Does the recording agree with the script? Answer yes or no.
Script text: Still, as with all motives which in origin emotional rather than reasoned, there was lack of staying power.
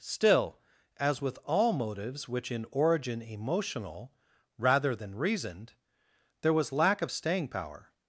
yes